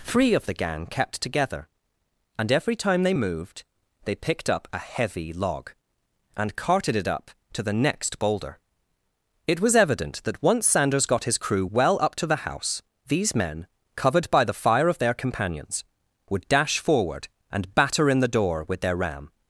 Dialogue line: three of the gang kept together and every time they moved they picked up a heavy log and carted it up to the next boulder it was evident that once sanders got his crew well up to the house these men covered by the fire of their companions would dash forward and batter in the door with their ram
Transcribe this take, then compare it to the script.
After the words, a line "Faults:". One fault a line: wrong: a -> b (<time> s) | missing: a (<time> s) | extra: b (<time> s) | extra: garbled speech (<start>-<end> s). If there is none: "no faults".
three of the gang kept together and every time they moved they picked up a heavy log and carted it up to the next boulder it was evident that once sanders got his crew well up to the house these men covered by the fire of their companions would dash forward and batter in the door with their ram
Faults:
no faults